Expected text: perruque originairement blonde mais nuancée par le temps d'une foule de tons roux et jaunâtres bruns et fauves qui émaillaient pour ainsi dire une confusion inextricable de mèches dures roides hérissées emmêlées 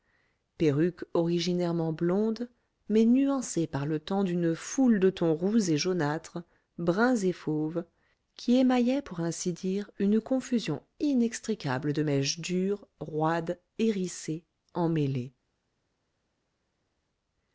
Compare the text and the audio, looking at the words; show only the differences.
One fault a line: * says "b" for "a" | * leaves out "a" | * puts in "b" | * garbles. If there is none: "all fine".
all fine